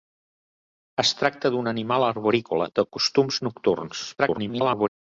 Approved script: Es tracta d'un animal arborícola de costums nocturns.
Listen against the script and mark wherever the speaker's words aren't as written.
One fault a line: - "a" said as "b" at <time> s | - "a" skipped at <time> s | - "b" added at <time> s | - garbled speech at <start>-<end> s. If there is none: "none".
- garbled speech at 4.2-4.9 s